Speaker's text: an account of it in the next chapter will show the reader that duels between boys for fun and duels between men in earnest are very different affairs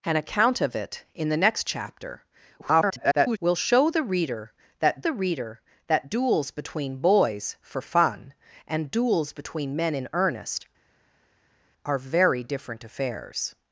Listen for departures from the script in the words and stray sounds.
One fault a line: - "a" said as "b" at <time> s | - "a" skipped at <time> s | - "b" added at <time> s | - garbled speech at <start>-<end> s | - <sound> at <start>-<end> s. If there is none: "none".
- garbled speech at 2.6-3.4 s
- "the reader that" added at 5.0 s